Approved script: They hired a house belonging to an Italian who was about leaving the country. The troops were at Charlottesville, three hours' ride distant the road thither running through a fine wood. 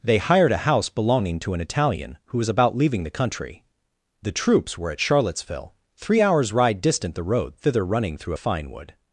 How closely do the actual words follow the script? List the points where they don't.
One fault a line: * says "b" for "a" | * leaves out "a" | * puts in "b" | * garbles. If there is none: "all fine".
all fine